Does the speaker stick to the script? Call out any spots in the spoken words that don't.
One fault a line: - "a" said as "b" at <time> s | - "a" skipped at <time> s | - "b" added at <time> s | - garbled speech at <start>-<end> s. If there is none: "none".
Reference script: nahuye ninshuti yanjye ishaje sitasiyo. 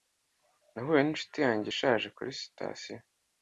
- "kuri" added at 2.2 s